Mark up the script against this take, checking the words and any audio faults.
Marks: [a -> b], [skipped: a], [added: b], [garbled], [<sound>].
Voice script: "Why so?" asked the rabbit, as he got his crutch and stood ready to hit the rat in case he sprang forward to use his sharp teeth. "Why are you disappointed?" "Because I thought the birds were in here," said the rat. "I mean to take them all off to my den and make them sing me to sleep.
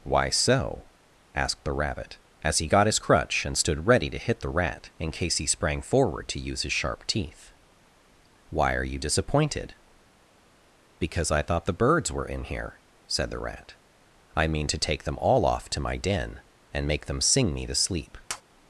"Why so?" asked the rabbit, as he got his crutch and stood ready to hit the rat in case he sprang forward to use his sharp teeth. "Why are you disappointed?" "Because I thought the birds were in here," said the rat. "I mean to take them all off to my den and make them sing me to sleep. [tap]